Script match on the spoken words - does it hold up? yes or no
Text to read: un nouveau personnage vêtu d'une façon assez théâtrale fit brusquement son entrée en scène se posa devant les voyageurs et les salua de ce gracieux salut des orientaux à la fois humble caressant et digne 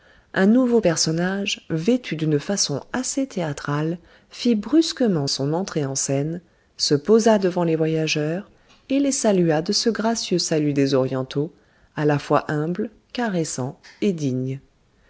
yes